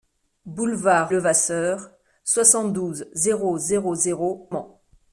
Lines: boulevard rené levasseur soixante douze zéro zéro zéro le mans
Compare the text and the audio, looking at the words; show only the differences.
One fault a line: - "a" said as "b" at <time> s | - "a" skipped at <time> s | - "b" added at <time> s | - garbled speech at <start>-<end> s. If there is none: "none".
- "rené" skipped at 1.1 s
- "le" skipped at 4.5 s